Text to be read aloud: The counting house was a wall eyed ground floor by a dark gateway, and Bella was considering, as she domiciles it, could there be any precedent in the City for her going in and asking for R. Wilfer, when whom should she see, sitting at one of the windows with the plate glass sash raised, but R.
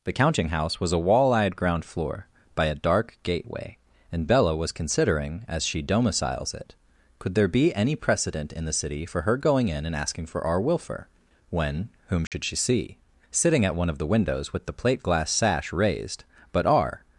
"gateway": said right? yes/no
yes